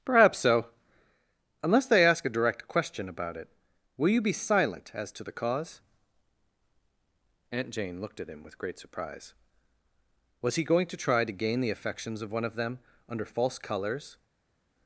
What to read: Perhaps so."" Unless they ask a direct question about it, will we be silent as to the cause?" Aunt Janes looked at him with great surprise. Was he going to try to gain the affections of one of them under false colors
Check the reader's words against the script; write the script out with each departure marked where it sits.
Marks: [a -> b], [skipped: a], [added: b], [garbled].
Perhaps so."" Unless they ask a direct question about it, will [we -> you] be silent as to the cause?" Aunt [Janes -> Jane] looked at him with great surprise. Was he going to try to gain the affections of one of them under false colors